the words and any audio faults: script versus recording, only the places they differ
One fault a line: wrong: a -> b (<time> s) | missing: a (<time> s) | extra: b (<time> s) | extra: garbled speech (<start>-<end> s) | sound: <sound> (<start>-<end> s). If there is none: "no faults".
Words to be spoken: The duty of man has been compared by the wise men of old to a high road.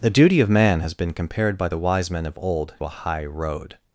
missing: to (2.7 s)